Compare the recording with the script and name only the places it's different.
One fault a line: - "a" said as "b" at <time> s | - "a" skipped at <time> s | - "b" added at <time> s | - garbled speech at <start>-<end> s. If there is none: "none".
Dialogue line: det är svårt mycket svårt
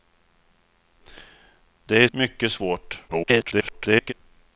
- "svårt" skipped at 2.1 s
- garbled speech at 3.1-4.1 s